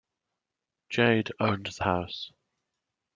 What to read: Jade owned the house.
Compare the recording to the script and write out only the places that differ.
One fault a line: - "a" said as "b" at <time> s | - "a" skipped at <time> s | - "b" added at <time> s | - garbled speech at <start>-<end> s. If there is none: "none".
none